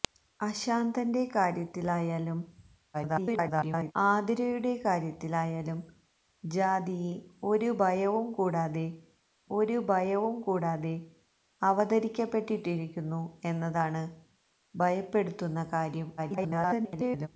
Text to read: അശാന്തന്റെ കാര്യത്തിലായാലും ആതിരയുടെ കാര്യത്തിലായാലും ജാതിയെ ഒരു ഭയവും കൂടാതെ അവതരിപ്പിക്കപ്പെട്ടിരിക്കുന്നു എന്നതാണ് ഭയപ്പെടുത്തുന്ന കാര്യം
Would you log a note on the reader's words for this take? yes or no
yes